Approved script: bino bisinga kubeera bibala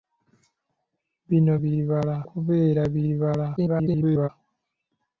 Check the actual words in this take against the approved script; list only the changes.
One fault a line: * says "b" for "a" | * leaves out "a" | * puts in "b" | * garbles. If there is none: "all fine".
* says "bibala" for "bisinga"
* garbles